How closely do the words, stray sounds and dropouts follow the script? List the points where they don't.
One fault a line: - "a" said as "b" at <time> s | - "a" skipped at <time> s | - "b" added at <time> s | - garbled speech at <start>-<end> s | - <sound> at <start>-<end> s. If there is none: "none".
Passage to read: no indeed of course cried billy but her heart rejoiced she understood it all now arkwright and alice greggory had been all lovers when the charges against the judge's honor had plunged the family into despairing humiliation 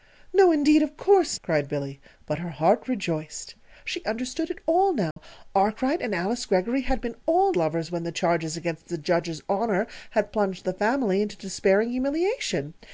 - dropout at 5.1-5.2 s